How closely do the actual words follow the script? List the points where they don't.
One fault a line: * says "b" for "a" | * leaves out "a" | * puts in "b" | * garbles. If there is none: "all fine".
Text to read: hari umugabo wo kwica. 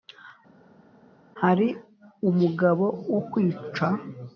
all fine